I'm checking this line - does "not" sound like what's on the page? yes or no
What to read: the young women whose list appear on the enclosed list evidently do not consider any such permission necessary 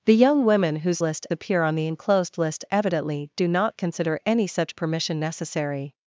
yes